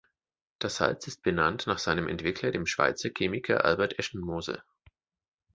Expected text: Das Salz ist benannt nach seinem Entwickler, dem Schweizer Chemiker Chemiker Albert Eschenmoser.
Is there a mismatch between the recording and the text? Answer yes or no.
yes